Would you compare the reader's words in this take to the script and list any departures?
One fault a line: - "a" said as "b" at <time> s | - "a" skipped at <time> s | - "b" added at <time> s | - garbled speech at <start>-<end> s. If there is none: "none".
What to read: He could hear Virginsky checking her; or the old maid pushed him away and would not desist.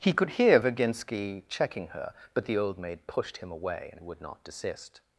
- "or" said as "but" at 2.3 s